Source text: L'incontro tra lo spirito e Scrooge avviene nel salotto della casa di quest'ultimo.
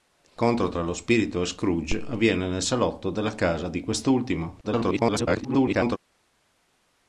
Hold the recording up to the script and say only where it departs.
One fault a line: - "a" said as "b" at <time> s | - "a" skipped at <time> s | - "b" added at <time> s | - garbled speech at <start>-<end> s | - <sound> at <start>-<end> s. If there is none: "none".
- garbled speech at 4.6-6.0 s